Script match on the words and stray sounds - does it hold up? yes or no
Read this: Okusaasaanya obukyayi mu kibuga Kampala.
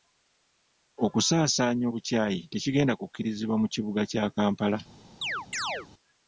no